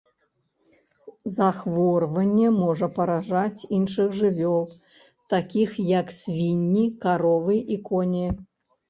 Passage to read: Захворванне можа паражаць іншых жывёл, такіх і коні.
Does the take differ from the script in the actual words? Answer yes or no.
yes